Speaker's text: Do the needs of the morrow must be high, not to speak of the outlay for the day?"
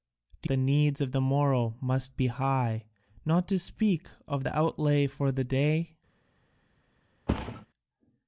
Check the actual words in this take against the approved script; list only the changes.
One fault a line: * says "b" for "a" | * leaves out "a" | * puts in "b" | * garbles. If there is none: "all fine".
all fine